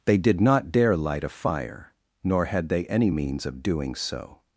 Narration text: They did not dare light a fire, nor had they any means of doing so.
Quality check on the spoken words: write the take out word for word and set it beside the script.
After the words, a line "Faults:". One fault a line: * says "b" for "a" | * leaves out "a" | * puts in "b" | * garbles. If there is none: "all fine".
They did not dare light a fire, nor had they any means of doing so.
Faults:
all fine